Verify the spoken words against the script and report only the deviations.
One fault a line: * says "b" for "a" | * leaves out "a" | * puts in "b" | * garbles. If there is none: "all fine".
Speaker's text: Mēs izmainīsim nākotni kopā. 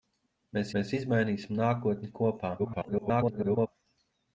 * puts in "mēs"
* garbles